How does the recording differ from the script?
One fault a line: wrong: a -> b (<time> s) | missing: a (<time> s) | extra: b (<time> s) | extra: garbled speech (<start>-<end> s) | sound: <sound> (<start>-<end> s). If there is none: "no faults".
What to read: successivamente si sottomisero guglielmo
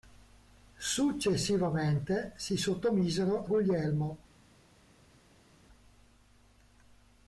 no faults